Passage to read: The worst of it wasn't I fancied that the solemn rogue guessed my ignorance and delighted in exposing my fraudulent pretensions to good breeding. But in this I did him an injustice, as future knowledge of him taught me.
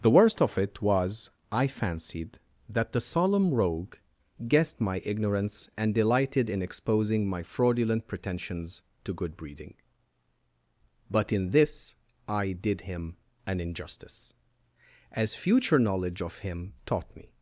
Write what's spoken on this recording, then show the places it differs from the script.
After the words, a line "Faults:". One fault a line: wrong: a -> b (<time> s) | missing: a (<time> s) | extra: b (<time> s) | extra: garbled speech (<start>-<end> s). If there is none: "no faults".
The worst of it was I fancied that the solemn rogue guessed my ignorance and delighted in exposing my fraudulent pretensions to good breeding. But in this I did him an injustice, as future knowledge of him taught me.
Faults:
wrong: wasn't -> was (0.8 s)